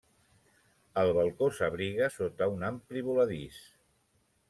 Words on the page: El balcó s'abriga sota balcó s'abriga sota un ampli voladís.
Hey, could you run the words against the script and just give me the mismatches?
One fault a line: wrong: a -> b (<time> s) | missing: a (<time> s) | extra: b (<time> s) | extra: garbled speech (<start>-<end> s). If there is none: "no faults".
missing: balcó s'abriga sota (2.5 s)